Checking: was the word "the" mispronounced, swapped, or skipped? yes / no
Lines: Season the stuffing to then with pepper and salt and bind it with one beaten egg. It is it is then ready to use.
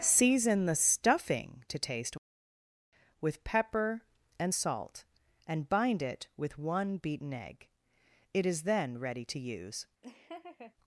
no